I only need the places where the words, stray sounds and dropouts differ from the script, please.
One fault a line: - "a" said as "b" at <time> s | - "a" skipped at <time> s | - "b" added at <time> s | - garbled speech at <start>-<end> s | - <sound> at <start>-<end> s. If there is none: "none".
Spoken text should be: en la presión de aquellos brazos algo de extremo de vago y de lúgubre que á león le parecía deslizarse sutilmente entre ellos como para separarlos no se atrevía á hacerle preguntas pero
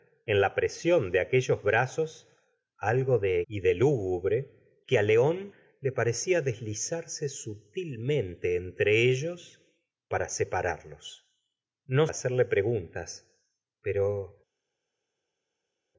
- "extremo de vago" skipped at 3.4 s
- "como" skipped at 9.6 s
- "se atrevía" skipped at 12.1 s